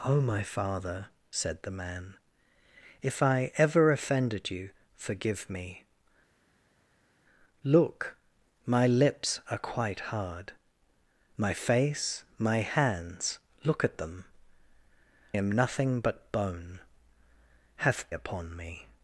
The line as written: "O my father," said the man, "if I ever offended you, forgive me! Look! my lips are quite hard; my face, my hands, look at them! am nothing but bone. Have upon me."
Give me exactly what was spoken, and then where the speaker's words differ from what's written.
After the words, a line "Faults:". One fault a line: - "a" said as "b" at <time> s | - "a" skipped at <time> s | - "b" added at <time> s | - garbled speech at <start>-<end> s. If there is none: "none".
"O my father," said the man, "if I ever offended you, forgive me! Look! my lips are quite hard; my face, my hands, look at them! am nothing but bone. Have upon me."
Faults:
none